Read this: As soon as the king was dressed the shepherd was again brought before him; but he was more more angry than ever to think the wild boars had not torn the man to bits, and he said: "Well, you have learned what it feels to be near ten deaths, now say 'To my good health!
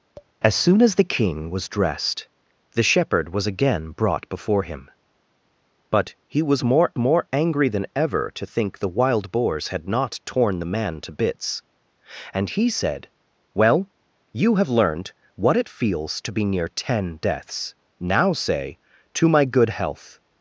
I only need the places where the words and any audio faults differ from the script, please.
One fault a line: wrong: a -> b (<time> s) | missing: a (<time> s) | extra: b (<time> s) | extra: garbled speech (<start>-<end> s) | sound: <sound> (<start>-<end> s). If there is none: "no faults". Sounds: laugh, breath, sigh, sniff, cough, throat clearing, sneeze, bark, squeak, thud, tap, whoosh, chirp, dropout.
sound: tap (0.2-0.3 s)